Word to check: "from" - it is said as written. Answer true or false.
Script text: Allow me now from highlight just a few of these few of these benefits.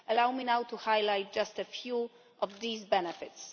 false